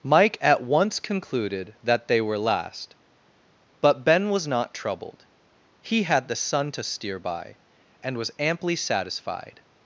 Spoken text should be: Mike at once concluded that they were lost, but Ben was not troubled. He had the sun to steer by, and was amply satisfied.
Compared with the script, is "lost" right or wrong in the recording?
wrong